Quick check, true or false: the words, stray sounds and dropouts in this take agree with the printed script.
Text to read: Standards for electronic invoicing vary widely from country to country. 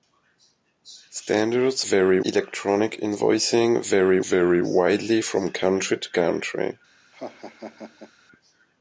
false